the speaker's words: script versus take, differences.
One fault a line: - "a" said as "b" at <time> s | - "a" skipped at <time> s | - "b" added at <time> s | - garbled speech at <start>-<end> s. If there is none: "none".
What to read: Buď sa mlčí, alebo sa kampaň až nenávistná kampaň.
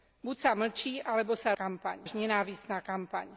none